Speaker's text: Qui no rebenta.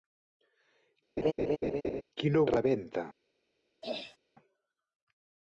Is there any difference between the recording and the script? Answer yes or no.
no